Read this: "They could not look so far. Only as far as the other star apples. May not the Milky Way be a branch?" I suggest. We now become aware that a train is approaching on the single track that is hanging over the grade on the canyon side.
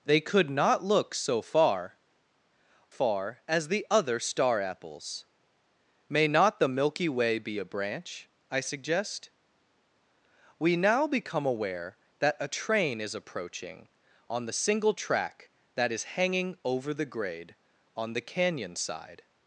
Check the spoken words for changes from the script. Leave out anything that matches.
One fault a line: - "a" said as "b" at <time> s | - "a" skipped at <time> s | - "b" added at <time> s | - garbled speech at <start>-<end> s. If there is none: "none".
- "Only as" skipped at 2.0 s